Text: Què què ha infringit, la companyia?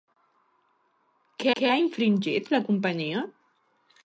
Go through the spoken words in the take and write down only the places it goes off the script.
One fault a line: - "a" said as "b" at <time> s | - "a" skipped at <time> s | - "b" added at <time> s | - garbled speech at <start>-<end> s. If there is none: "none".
none